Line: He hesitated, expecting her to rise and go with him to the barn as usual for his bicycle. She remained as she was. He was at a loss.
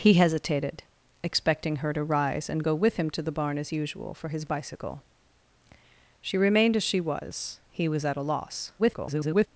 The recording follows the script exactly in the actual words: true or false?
false